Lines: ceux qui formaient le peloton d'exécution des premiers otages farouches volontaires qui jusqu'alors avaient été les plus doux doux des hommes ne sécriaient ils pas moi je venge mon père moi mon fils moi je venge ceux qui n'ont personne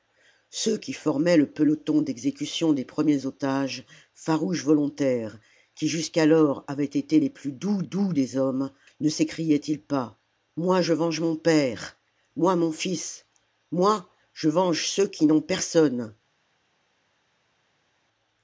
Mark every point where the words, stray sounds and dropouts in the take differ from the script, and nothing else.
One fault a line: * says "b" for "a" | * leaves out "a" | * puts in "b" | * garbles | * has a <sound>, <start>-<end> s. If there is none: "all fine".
all fine